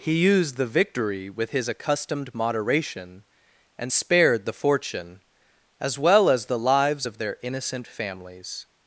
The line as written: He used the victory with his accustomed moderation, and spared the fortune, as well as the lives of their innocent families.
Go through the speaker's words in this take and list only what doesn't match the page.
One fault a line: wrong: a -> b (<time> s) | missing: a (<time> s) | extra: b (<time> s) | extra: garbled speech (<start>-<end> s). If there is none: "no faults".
no faults